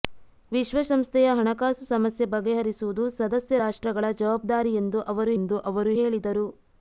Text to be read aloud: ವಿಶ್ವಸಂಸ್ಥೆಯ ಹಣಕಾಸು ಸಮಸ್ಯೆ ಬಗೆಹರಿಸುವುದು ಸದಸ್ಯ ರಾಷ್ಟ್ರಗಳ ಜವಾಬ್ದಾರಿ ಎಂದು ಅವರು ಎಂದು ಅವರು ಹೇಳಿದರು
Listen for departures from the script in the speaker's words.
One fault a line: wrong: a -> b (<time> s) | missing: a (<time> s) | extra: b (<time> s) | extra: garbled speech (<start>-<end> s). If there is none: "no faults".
no faults